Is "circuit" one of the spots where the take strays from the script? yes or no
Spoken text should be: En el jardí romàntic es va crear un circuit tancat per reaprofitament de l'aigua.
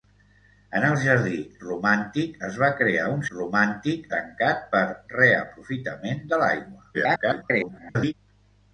yes